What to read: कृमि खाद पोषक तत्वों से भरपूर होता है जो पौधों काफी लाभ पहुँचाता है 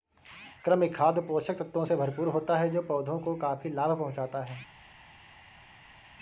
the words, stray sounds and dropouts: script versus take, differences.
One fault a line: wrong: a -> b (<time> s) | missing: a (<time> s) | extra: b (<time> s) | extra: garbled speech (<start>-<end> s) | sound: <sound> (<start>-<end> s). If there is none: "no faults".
extra: को (3.2 s)